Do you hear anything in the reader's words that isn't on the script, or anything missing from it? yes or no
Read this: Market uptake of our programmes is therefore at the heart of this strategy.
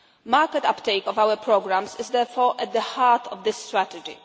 no